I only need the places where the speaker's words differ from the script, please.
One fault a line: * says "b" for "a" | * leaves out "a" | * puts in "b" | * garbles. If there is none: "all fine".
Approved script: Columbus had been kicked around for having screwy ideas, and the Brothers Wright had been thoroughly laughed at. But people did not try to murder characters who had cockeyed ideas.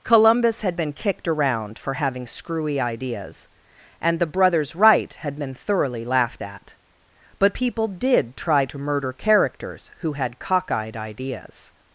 * leaves out "not"